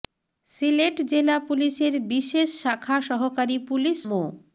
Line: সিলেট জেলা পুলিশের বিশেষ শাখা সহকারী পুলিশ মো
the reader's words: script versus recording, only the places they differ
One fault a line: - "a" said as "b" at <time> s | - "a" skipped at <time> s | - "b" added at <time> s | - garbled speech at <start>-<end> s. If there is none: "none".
none